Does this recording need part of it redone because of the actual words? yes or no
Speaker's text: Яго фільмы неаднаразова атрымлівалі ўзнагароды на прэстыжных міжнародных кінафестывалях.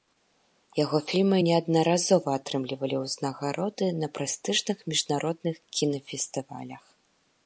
no